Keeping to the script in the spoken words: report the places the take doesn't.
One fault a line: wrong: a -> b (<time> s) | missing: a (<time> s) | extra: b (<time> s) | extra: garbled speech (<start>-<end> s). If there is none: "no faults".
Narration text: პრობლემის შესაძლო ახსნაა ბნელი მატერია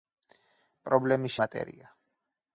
missing: შესაძლო ახსნაა ბნელი (1.4 s)